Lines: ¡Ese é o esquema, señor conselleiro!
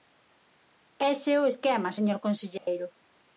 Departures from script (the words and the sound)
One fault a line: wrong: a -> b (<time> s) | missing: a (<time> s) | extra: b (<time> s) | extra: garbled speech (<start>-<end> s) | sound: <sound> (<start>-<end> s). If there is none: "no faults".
sound: dropout (2.6-2.7 s)